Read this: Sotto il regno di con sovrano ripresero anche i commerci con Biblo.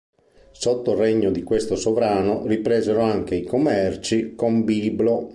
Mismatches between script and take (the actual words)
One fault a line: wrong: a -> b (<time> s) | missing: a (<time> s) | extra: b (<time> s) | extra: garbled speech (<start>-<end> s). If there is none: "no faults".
wrong: con -> questo (1.4 s)